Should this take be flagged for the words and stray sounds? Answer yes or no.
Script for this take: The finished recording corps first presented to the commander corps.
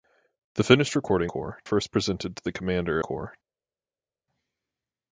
no